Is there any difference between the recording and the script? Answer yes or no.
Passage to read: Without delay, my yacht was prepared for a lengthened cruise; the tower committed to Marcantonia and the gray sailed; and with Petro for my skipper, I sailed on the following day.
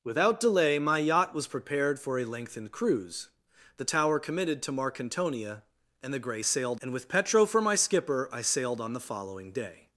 no